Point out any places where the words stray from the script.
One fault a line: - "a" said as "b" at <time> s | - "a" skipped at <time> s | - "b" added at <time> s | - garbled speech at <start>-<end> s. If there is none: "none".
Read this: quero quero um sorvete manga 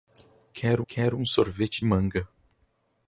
none